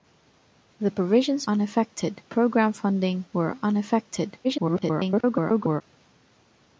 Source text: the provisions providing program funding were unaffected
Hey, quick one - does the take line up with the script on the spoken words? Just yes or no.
no